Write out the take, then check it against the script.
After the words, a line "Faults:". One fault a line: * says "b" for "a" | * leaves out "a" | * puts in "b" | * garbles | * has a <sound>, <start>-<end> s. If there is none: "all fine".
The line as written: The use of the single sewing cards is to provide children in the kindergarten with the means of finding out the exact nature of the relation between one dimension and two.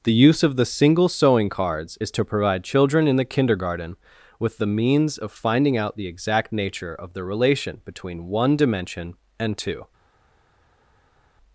The use of the single sewing cards is to provide children in the kindergarten with the means of finding out the exact nature of the relation between one dimension and two.
Faults:
all fine